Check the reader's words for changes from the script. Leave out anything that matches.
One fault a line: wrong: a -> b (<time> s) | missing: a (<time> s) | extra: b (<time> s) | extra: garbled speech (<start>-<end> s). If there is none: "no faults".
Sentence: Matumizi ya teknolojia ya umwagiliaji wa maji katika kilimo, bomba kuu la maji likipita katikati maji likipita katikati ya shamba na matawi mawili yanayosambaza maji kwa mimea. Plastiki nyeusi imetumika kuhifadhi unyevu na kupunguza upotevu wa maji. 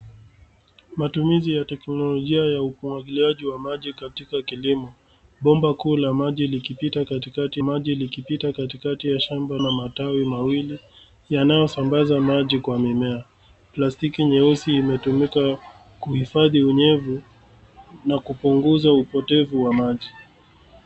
no faults